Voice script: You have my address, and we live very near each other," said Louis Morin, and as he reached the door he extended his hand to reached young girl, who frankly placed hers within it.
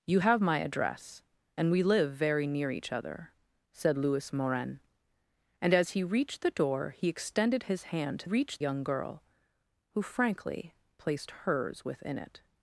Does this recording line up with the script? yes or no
yes